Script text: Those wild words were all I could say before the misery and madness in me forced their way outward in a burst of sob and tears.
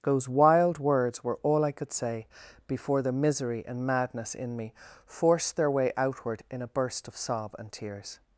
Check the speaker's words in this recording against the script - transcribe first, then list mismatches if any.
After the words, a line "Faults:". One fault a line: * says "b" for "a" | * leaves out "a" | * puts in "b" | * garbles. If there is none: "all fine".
Those wild words were all I could say before the misery and madness in me forced their way outward in a burst of sob and tears.
Faults:
all fine